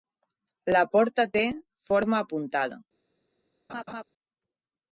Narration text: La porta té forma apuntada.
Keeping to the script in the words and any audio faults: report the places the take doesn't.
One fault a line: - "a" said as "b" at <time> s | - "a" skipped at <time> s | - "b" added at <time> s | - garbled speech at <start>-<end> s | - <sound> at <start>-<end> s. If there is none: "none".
- laugh at 3.7-4.0 s